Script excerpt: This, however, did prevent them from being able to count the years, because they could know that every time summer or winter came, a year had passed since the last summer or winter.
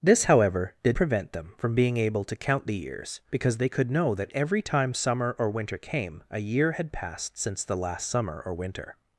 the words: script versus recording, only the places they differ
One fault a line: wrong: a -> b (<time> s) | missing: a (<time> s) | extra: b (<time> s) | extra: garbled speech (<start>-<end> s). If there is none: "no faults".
no faults